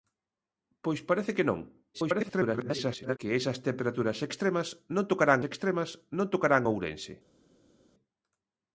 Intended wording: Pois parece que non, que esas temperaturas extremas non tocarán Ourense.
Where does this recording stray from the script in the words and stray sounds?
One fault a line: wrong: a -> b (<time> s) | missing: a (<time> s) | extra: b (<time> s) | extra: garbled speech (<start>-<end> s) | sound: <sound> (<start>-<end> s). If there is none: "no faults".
extra: garbled speech (1.9-3.2 s)
extra: extremas non tocarán (5.5 s)